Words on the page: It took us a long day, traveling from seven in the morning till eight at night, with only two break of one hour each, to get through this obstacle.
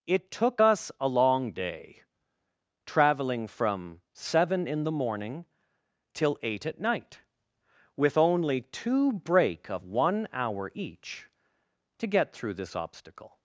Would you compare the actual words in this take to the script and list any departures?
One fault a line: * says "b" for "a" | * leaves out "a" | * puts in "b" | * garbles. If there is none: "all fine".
all fine